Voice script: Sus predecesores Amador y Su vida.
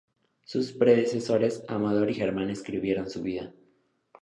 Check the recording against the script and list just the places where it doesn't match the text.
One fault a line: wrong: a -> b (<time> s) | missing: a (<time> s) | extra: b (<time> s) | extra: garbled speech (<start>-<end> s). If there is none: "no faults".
extra: Germán escribieron (2.1 s)